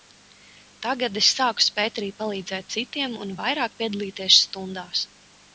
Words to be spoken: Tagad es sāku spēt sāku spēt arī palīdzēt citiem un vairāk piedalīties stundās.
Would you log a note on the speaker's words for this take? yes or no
yes